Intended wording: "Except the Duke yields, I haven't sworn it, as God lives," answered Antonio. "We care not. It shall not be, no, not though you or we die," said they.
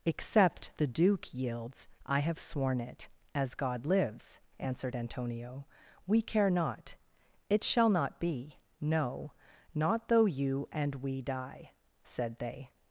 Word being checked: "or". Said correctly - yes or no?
no